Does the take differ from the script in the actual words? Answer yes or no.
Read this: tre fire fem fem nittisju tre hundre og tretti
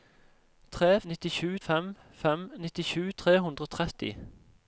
yes